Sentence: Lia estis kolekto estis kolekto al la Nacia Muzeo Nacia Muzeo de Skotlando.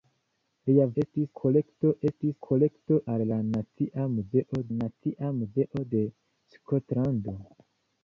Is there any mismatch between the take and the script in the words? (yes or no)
no